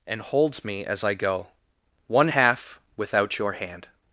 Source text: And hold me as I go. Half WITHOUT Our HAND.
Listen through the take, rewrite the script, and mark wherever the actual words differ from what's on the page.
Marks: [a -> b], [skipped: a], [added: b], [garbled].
And [hold -> holds] me as I go. [added: One] Half WITHOUT [Our -> YOUR] HAND.